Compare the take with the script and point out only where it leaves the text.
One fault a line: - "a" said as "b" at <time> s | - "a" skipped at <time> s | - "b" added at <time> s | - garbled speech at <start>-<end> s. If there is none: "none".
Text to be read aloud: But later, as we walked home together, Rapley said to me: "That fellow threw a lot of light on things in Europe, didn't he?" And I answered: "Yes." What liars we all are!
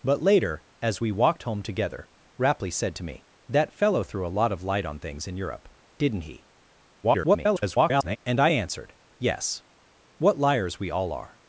- garbled speech at 7.0-8.2 s